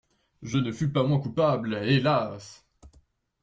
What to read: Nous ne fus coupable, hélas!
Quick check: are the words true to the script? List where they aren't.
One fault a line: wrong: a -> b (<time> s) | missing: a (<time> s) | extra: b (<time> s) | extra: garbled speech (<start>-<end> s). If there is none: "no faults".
wrong: Nous -> Je (0.4 s)
extra: pas moins (0.9 s)